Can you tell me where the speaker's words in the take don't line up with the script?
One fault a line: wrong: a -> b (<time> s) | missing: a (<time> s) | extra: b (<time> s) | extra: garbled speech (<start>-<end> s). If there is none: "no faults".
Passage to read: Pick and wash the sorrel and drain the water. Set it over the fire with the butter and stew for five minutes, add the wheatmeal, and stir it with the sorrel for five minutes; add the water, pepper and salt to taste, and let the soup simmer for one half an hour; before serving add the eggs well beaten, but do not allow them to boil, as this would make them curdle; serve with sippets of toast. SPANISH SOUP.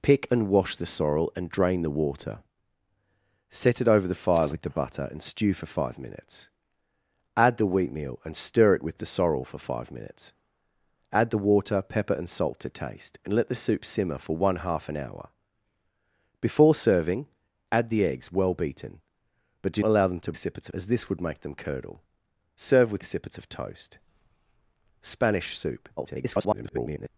missing: not (19.8 s)
wrong: boil -> sippets (20.4 s)
extra: garbled speech (26.0-27.1 s)